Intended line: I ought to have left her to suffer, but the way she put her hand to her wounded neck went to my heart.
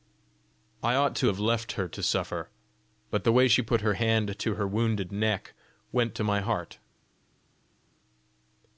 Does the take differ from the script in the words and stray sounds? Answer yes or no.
no